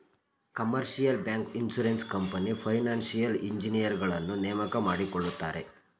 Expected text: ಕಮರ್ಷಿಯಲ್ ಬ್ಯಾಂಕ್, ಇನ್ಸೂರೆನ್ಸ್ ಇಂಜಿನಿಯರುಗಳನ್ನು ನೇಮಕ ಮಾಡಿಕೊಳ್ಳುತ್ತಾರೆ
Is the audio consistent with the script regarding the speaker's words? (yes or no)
no